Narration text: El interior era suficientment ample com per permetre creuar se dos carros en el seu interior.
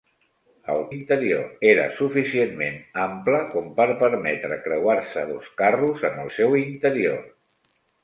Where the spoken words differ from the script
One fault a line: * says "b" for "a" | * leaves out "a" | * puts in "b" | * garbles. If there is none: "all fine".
all fine